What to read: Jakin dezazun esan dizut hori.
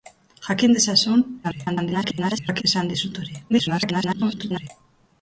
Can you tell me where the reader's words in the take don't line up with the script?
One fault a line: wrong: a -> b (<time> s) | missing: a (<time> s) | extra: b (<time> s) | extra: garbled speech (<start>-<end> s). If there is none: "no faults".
extra: garbled speech (1.4-2.6 s)
extra: garbled speech (3.5-4.7 s)